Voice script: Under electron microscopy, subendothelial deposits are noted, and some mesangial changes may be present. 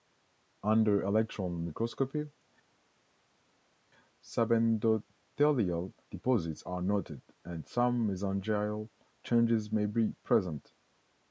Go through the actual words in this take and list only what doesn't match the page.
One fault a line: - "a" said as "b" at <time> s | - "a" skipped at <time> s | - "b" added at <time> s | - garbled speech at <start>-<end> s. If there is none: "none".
none